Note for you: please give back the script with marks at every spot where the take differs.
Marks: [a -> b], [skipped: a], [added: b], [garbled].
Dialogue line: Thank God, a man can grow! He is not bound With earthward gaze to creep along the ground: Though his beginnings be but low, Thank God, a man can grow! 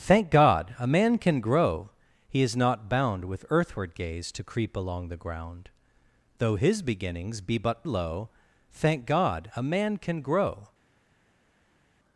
Thank God, a man can grow! He is not bound With earthward gaze to creep along the ground: Though his beginnings be but low, Thank God, a man can grow!